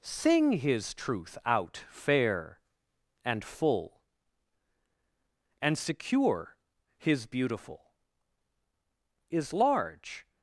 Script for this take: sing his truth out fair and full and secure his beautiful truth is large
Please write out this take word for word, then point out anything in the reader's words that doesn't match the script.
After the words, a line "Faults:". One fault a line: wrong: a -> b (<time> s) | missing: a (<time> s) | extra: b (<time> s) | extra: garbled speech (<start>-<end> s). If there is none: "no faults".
sing his truth out fair and full and secure his beautiful is large
Faults:
missing: truth (7.9 s)